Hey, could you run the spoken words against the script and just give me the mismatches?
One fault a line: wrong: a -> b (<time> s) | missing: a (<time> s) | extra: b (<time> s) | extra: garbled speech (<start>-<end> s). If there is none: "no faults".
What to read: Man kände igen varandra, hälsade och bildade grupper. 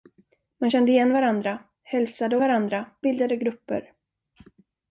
wrong: och -> varandra (2.4 s)